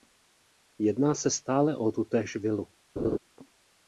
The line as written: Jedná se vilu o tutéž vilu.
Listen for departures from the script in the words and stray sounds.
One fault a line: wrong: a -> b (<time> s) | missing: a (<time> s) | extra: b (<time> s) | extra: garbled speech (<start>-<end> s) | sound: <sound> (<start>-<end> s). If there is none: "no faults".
wrong: vilu -> stále (1.3 s)
sound: laugh (3.0-3.2 s)